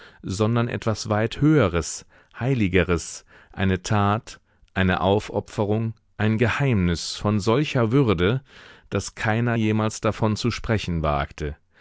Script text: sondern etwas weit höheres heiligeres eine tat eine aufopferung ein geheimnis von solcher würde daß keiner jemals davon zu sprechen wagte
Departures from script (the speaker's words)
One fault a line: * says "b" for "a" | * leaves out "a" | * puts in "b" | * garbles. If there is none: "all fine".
all fine